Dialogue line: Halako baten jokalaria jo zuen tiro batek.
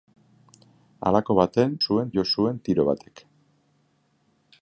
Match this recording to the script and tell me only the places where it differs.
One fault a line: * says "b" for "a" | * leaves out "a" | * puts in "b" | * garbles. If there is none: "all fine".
* says "zuen" for "jokalaria"